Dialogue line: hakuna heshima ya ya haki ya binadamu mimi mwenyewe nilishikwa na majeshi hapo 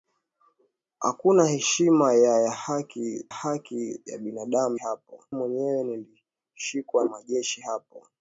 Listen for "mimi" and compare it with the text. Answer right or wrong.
wrong